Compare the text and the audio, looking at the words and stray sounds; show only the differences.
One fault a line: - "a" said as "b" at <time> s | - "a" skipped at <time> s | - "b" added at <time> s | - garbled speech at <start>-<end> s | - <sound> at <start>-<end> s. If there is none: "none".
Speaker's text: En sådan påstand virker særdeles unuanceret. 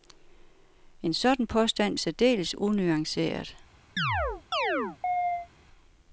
- "virker" skipped at 2.0 s
- chirp at 4.0-5.5 s